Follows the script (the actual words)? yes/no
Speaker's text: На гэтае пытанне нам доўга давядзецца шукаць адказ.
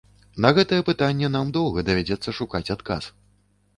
yes